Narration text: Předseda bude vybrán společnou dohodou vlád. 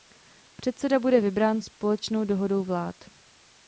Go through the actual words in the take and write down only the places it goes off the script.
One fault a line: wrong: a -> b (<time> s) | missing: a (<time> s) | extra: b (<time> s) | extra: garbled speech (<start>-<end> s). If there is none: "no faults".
no faults